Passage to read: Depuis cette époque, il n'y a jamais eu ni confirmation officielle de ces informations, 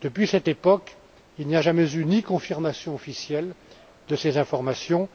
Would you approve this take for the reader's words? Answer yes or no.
yes